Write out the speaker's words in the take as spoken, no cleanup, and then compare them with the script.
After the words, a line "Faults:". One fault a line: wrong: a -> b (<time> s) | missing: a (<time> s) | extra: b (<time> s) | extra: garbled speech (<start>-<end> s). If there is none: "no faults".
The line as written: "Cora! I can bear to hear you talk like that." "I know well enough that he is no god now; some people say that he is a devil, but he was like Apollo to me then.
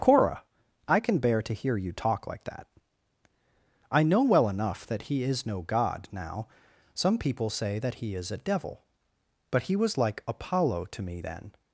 "Cora! I can bear to hear you talk like that." "I know well enough that he is no god now; some people say that he is a devil, but he was like Apollo to me then.
Faults:
no faults